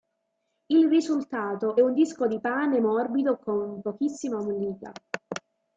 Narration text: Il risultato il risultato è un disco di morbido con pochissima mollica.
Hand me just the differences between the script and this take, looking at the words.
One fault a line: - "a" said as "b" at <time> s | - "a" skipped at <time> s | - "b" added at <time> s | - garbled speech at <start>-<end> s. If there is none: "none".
- "il risultato" skipped at 1.8 s
- "pane" added at 2.4 s